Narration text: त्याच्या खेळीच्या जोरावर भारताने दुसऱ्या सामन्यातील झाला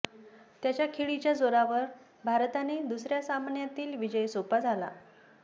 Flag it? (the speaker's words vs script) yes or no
yes